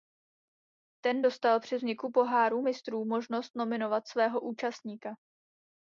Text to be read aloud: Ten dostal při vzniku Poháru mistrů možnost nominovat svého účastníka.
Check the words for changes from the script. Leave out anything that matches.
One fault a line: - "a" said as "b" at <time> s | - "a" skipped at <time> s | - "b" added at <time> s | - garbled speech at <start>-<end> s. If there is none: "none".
none